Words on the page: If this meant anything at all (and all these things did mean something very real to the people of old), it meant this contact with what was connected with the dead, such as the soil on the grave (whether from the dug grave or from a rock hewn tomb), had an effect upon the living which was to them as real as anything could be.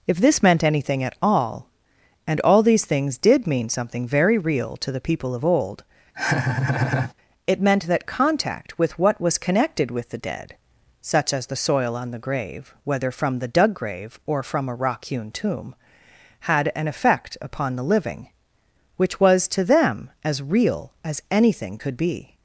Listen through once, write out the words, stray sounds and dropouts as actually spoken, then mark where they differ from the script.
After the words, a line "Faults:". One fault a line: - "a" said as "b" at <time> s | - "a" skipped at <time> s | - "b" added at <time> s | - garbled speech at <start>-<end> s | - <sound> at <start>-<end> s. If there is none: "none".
If this meant anything at all (and all these things did mean something very real to the people of old), it meant that contact with what was connected with the dead, such as the soil on the grave (whether from the dug grave or from a rock hewn tomb), had an effect upon the living which was to them as real as anything could be.
Faults:
- laugh at 6.1-7.1 s
- "this" said as "that" at 7.9 s